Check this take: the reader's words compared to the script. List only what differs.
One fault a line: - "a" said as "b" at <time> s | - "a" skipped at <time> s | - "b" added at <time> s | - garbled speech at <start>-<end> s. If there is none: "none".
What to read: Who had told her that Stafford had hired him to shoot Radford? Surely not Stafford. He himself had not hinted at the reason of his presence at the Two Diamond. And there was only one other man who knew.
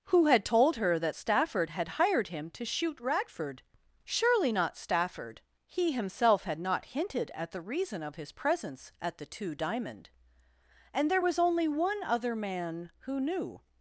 none